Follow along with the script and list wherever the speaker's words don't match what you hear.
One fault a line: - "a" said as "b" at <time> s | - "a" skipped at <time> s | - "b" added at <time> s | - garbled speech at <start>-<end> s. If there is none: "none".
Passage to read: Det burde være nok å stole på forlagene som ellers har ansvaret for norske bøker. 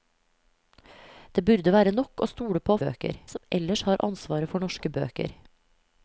- "forlagene" said as "bøker" at 2.9 s